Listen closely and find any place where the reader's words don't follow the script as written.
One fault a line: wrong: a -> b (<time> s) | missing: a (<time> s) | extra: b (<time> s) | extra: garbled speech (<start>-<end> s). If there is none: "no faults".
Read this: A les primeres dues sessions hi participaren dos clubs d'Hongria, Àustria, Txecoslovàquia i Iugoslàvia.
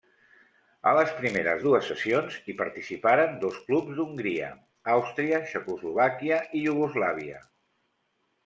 no faults